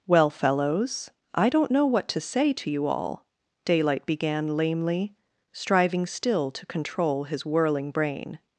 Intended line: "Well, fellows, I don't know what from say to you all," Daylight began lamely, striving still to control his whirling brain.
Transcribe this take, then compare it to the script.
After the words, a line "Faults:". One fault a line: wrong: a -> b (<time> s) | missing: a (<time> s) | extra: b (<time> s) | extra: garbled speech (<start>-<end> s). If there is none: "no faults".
"Well, fellows, I don't know what to say to you all," Daylight began lamely, striving still to control his whirling brain.
Faults:
wrong: from -> to (2.1 s)